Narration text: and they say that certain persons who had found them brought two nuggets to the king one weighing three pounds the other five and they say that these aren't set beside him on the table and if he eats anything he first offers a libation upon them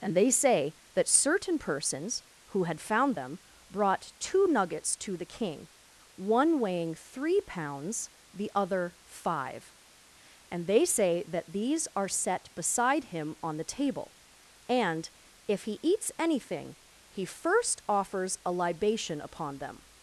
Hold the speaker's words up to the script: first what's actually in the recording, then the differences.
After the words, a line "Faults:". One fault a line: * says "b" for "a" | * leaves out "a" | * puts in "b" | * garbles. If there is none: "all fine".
and they say that certain persons who had found them brought two nuggets to the king one weighing three pounds the other five and they say that these are set beside him on the table and if he eats anything he first offers a libation upon them
Faults:
* says "are" for "aren't"